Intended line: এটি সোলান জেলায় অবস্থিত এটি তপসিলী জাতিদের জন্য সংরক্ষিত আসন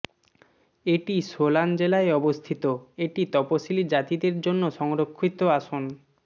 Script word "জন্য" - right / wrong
right